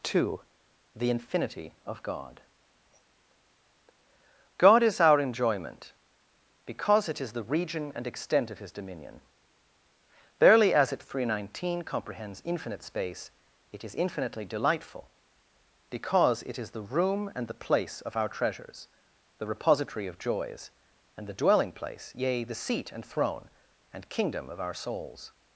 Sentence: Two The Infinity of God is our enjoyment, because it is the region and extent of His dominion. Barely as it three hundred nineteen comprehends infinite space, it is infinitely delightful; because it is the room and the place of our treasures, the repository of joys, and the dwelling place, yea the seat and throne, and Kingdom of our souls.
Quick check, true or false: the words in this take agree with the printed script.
false